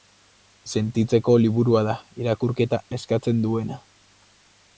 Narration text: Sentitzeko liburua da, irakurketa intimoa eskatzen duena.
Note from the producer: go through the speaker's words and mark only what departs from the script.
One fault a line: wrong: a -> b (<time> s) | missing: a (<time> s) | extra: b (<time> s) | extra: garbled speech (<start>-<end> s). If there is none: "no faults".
missing: intimoa (2.8 s)